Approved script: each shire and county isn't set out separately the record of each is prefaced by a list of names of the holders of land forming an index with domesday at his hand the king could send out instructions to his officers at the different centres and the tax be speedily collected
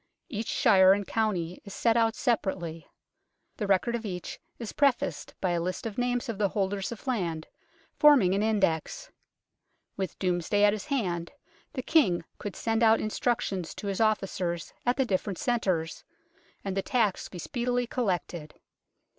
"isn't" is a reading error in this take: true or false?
true